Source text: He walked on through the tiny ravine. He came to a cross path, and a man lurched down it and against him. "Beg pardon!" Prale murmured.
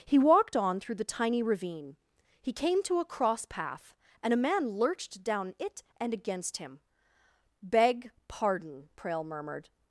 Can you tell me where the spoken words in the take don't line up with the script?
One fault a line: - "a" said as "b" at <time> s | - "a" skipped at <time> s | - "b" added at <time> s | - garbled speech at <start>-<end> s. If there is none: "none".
none